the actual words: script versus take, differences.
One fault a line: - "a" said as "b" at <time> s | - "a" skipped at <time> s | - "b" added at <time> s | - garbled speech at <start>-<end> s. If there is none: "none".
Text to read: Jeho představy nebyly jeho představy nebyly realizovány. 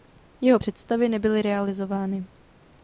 - "jeho představy nebyly" skipped at 1.4 s